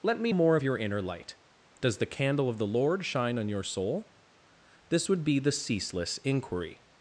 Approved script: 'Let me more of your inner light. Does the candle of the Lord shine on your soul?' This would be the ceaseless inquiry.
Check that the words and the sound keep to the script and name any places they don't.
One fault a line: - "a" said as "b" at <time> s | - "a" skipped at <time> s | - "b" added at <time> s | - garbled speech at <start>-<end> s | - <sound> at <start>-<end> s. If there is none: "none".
none